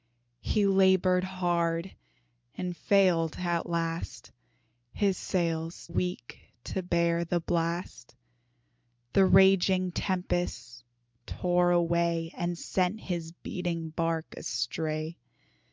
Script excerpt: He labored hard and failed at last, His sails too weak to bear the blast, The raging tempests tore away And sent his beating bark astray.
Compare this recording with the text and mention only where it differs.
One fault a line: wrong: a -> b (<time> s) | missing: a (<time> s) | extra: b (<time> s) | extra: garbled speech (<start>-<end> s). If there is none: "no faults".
missing: too (5.9 s)